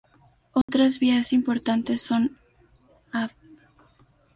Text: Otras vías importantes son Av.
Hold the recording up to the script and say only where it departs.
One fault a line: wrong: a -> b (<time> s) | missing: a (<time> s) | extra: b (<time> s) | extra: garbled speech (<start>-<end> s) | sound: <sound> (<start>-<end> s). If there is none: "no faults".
sound: dropout (0.6-0.7 s)